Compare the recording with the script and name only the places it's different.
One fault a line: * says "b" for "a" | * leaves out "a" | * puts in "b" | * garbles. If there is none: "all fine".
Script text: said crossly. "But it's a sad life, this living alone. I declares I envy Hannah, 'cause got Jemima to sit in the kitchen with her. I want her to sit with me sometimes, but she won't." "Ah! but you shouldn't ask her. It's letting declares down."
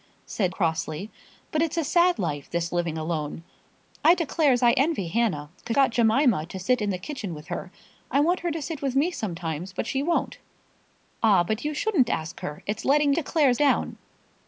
all fine